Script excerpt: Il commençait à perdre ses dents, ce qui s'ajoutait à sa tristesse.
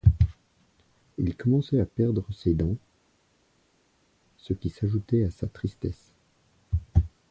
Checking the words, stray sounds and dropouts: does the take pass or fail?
pass